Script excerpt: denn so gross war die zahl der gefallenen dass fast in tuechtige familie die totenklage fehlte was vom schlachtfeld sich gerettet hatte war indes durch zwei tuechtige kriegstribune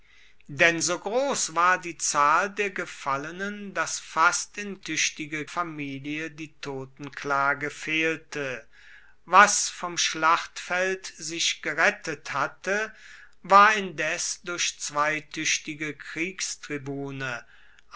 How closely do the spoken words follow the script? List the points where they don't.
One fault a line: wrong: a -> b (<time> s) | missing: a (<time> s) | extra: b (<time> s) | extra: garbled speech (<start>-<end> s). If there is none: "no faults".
no faults